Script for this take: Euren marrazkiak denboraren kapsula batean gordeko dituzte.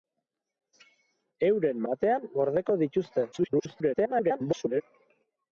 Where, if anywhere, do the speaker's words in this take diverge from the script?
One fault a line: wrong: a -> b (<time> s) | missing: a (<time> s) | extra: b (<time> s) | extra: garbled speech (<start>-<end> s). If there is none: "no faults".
missing: marrazkiak denboraren kapsula (1.8 s)
extra: garbled speech (3.3-4.8 s)